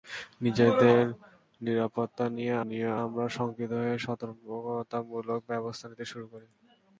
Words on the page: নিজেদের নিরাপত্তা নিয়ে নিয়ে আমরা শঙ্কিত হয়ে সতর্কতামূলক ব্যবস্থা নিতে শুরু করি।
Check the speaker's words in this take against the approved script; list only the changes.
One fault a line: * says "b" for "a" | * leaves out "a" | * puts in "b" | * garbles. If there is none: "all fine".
all fine